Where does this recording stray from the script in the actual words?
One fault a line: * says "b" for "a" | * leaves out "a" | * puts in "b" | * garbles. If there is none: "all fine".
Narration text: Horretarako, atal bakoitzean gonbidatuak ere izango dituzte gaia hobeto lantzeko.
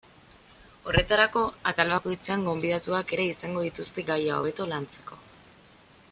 all fine